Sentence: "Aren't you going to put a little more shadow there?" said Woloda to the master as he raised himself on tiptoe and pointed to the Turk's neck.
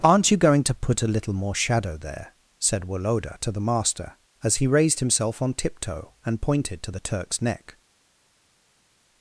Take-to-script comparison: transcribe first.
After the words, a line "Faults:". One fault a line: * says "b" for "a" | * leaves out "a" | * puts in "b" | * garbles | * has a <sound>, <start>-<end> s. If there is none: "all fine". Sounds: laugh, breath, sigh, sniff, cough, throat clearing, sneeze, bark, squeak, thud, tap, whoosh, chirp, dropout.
"Aren't you going to put a little more shadow there?" said Woloda to the master as he raised himself on tiptoe and pointed to the Turk's neck.
Faults:
all fine